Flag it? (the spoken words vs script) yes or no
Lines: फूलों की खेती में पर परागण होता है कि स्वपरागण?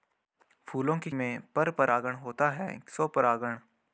yes